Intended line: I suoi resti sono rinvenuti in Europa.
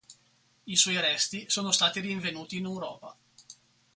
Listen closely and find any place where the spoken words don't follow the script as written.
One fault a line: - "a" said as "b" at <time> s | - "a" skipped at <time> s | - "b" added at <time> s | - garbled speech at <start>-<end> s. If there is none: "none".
- "stati" added at 1.7 s